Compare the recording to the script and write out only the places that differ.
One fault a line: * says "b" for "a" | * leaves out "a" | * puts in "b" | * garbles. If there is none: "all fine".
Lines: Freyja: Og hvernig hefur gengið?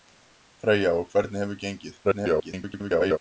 * garbles